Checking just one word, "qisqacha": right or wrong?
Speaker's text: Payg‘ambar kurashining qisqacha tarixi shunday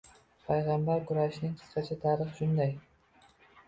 right